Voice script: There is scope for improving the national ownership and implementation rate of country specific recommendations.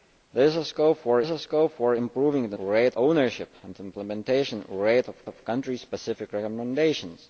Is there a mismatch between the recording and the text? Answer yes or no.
yes